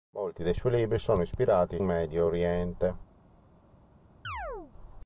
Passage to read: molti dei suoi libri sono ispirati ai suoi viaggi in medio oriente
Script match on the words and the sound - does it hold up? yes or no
no